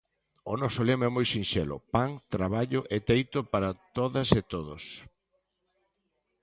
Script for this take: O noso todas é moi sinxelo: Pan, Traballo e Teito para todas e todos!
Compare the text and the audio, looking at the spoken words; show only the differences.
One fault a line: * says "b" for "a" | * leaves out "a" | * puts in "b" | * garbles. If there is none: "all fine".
* says "lema" for "todas"